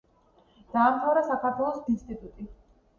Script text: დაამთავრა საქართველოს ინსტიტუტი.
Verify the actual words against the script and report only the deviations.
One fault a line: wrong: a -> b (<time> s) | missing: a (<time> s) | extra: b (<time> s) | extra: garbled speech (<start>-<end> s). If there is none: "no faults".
no faults